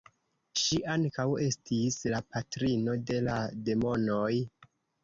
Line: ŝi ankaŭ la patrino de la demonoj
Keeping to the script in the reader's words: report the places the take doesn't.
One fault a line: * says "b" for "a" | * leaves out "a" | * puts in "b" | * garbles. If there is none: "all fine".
* puts in "estis"